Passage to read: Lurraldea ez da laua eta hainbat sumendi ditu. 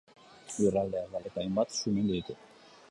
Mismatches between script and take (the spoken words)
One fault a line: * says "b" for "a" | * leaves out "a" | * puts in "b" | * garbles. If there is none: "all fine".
* leaves out "laua"